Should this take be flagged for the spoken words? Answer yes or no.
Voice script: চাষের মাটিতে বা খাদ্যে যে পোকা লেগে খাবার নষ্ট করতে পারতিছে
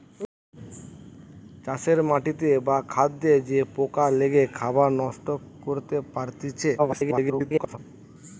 yes